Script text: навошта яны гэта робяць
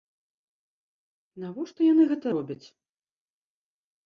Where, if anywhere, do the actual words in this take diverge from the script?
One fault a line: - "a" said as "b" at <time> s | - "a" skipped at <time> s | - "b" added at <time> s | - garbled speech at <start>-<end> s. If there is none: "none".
none